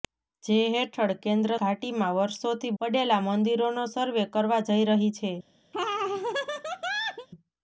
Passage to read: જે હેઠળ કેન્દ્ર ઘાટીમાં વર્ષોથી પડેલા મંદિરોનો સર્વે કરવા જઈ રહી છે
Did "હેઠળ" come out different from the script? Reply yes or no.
no